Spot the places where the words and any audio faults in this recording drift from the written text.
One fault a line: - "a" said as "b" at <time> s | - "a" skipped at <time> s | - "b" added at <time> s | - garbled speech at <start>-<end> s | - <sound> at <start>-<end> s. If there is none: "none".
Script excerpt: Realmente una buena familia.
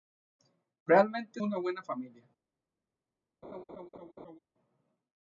- laugh at 3.4-4.4 s